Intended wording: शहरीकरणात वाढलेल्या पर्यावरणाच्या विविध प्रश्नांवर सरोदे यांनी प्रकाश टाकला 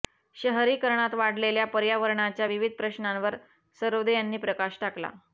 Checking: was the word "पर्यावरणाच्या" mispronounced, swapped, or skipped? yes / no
no